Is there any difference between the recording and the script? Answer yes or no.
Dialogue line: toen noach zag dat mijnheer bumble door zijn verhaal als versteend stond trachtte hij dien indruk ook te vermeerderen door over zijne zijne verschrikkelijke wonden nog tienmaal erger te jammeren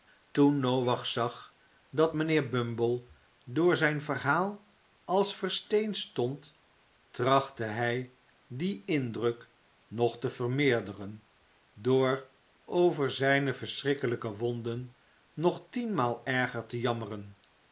yes